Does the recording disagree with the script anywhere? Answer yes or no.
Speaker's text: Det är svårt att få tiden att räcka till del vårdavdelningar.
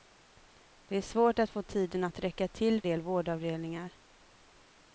no